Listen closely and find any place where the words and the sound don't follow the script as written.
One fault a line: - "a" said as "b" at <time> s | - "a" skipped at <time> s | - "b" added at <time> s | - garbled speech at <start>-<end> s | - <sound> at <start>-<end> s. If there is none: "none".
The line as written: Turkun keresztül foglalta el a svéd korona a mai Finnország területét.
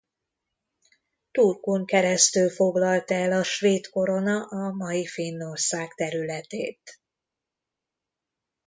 none